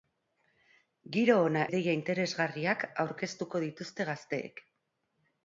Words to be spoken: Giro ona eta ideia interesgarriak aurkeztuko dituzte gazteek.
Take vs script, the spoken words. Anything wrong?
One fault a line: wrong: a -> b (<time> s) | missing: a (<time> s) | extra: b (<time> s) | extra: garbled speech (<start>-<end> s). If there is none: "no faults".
missing: eta (1.7 s)